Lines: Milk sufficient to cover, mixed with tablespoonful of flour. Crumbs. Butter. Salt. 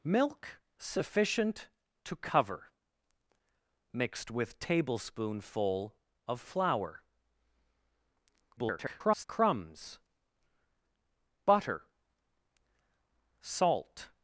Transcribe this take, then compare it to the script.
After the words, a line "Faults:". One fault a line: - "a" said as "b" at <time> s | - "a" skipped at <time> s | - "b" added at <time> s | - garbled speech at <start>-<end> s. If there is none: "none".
Milk sufficient to cover, mixed with tablespoonful of flour. [garbled] Crumbs. Butter. Salt.
Faults:
- garbled speech at 8.6-9.2 s